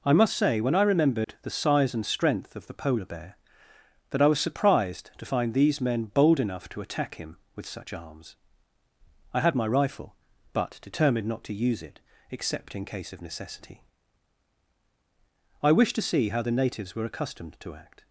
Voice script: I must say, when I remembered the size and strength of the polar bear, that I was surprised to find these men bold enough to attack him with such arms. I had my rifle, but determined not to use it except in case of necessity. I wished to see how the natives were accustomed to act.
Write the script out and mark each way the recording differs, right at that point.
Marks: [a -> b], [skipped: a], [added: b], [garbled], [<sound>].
I must say, when I remembered [dropout] the size and strength of the polar bear, that I was surprised to find these men bold enough to attack him with such arms. I had my rifle, but determined not to use it except in case of necessity. I wished to see how the natives were accustomed to act.